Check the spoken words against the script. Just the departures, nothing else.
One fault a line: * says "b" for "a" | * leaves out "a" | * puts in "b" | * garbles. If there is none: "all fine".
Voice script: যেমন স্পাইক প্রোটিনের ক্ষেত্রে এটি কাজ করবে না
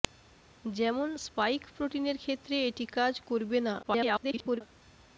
* garbles